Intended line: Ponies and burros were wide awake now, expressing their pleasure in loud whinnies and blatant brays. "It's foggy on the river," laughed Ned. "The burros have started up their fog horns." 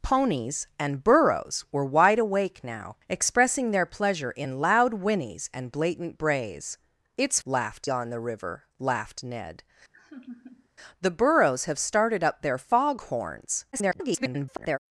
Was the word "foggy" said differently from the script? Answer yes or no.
yes